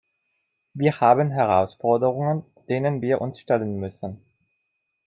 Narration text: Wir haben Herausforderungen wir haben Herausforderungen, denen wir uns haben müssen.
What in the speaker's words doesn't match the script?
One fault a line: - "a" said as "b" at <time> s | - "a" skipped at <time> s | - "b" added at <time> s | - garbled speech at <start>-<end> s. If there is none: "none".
- "wir haben Herausforderungen" skipped at 2.4 s
- "haben" said as "stellen" at 3.4 s